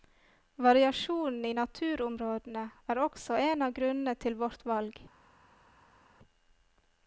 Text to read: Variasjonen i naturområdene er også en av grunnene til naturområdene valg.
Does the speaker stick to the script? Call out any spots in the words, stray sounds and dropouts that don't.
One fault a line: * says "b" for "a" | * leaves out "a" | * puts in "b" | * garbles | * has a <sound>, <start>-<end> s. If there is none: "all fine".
* says "vårt" for "naturområdene"